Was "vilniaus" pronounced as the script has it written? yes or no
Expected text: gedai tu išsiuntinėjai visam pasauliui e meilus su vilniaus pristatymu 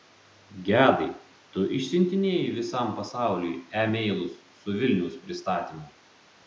yes